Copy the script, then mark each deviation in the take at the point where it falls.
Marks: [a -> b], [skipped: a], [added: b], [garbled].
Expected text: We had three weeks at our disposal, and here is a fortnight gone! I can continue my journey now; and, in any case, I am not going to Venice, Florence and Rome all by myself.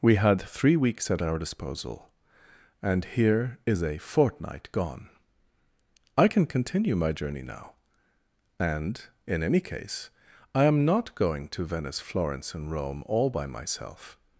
We had three weeks at our disposal, and here is a fortnight gone! I can continue my journey now; and, in any case, I am not going to Venice, Florence and Rome all by myself.